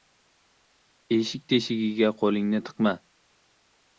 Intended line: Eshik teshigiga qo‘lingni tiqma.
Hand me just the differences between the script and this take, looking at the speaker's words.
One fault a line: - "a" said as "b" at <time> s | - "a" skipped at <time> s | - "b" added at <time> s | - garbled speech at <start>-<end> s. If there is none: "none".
none